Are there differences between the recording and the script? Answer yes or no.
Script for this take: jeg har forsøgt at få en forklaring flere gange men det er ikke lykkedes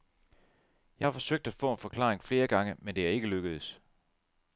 no